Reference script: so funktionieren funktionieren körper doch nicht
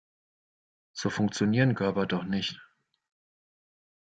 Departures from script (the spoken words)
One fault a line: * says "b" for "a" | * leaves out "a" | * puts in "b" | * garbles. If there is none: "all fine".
* leaves out "funktionieren"